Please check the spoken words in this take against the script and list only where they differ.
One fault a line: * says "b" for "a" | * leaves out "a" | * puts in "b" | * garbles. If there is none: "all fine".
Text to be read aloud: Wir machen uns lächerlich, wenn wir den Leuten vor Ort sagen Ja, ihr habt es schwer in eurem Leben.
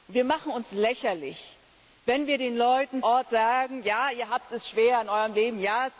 * leaves out "vor"